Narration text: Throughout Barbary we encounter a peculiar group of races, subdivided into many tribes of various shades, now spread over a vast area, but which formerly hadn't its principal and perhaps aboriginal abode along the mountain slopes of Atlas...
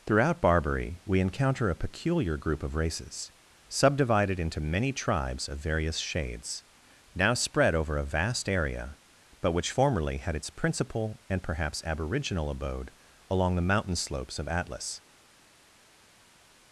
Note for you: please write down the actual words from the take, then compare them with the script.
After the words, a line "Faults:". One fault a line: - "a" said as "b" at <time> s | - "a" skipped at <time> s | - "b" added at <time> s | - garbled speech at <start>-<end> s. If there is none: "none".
Throughout Barbary we encounter a peculiar group of races, subdivided into many tribes of various shades, now spread over a vast area, but which formerly had its principal and perhaps aboriginal abode along the mountain slopes of Atlas...
Faults:
- "hadn't" said as "had" at 10.2 s